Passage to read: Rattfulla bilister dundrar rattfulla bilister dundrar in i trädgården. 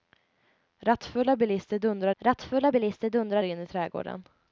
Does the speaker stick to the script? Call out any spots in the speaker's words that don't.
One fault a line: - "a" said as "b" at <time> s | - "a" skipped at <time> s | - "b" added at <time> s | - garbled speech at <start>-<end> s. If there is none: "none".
none